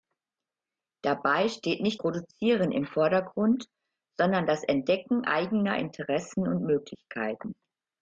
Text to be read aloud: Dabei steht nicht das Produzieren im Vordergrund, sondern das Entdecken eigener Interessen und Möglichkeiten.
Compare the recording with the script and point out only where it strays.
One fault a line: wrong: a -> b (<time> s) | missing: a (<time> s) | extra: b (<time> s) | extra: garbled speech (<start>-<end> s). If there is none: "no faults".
missing: das (2.0 s)